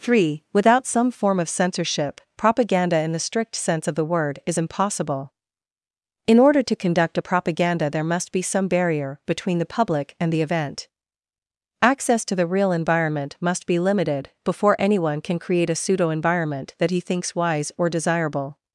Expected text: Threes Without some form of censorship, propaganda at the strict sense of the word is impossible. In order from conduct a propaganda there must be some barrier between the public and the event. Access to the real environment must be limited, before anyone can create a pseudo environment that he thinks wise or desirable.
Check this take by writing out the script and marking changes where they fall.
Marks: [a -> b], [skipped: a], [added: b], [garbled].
[Threes -> Three] Without some form of censorship, propaganda [at -> in] the strict sense of the word is impossible. In order [from -> to] conduct a propaganda there must be some barrier between the public and the event. Access to the real environment must be limited, before anyone can create a pseudo environment that he thinks wise or desirable.